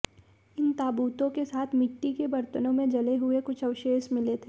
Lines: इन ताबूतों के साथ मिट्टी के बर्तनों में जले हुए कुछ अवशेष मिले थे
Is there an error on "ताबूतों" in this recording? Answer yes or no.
no